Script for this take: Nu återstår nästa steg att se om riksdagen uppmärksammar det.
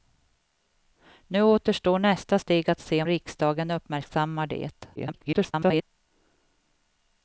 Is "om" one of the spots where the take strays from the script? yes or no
yes